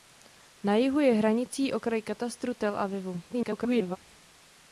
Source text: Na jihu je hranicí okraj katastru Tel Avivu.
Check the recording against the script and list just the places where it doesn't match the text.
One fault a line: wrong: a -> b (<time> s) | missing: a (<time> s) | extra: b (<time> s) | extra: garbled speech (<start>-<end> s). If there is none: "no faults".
extra: garbled speech (3.3-4.0 s)